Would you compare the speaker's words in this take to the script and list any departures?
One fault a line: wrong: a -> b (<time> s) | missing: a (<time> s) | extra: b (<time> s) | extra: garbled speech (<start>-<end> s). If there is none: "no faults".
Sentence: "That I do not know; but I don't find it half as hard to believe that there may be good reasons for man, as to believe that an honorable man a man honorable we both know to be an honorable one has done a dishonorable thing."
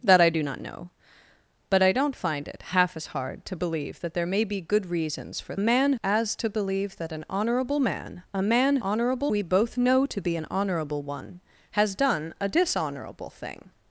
no faults